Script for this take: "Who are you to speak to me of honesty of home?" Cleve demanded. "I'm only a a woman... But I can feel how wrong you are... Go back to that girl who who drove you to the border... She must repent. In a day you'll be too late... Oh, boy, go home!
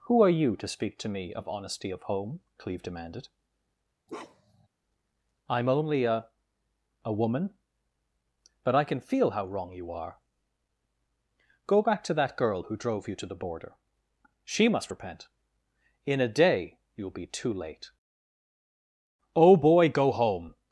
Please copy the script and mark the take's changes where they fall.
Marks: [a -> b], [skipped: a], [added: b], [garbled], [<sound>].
"Who are you to speak to me of honesty of home?" Cleve demanded. [bark] "I'm only a a woman... But I can feel how wrong you are... Go back to that girl who [skipped: who] drove you to the border... She must repent. In a day you'll be too late... Oh, boy, go home!